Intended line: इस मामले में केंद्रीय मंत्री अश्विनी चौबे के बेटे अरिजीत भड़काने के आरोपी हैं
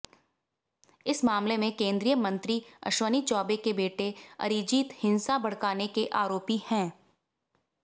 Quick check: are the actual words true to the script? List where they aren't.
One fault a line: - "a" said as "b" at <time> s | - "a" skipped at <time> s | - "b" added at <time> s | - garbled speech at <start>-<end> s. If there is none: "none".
- "हिंसा" added at 5.0 s